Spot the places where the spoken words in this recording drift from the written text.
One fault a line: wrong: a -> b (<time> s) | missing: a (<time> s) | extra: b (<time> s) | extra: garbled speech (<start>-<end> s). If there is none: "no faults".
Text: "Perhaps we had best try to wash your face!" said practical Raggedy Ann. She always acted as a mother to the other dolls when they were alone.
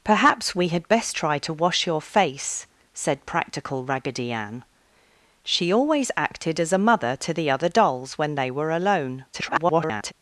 extra: garbled speech (9.3-10.1 s)